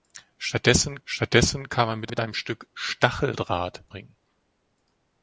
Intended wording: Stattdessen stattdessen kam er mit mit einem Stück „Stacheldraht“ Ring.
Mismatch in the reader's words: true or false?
false